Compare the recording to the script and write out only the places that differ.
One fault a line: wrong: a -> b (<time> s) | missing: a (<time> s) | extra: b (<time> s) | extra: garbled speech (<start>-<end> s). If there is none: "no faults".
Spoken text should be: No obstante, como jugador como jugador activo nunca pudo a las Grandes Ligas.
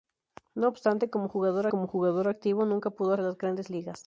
no faults